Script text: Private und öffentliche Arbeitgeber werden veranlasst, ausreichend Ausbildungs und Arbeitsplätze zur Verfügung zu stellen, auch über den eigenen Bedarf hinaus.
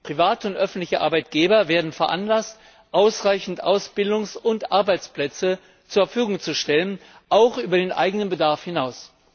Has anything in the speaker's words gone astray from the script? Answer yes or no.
no